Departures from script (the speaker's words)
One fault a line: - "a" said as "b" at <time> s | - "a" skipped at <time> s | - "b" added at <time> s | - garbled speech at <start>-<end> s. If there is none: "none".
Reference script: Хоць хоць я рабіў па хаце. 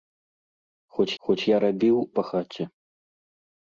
none